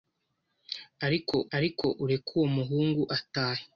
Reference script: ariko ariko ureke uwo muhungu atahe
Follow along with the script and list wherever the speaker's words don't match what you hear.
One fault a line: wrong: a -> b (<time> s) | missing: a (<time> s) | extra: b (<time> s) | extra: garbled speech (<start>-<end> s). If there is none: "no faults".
no faults